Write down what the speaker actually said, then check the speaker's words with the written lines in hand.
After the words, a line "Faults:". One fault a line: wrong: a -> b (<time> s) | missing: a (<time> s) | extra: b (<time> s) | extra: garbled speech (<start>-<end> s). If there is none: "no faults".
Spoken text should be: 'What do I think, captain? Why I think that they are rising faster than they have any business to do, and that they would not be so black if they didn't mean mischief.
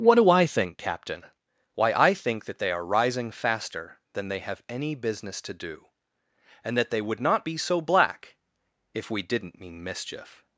'What do I think, captain? Why I think that they are rising faster than they have any business to do, and that they would not be so black if we didn't mean mischief.
Faults:
wrong: they -> we (9.1 s)